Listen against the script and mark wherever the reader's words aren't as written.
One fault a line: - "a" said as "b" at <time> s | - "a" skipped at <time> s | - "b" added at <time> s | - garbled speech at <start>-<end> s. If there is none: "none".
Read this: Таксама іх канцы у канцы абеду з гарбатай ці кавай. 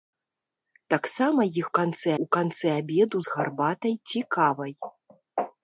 none